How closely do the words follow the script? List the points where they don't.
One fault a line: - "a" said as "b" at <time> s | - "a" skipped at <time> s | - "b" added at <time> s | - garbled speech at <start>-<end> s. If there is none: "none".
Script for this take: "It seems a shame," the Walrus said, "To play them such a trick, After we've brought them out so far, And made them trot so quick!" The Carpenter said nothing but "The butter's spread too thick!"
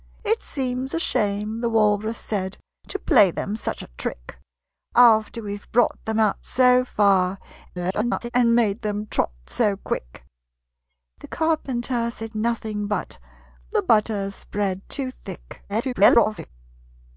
- garbled speech at 7.7-8.3 s
- garbled speech at 15.7-16.5 s